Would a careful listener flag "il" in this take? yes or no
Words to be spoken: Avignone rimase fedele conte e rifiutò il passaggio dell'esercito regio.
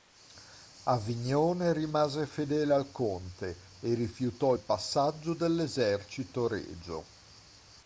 no